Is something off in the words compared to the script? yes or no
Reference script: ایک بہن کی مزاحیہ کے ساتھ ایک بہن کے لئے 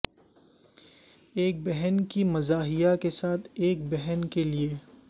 no